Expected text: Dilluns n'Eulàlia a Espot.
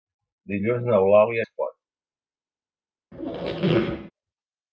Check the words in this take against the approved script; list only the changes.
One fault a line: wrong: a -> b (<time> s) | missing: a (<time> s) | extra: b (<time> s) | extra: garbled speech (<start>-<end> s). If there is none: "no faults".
no faults